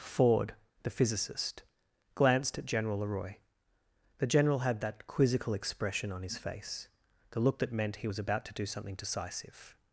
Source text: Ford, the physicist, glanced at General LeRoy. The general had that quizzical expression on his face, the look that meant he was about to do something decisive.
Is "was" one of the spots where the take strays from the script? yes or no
no